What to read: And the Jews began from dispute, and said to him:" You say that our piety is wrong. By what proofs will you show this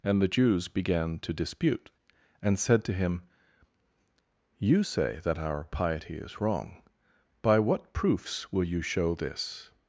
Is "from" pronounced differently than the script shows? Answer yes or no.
yes